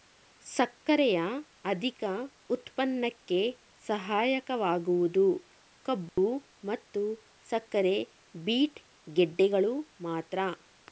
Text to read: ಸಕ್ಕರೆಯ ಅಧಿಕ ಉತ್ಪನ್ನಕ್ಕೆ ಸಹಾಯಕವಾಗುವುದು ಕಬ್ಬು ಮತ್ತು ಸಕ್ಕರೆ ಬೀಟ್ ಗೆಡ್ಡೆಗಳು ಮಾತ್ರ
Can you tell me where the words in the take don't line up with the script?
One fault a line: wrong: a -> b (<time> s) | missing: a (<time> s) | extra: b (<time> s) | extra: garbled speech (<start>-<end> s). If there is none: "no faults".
no faults